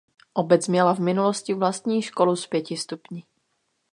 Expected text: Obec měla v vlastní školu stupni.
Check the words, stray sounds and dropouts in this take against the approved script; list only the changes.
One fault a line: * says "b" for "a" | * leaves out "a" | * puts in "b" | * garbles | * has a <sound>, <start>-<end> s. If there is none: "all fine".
* puts in "minulosti"
* puts in "s pěti"